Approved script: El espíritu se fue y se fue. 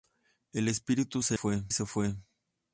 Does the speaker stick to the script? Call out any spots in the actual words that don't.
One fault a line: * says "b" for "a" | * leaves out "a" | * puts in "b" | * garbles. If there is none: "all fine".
all fine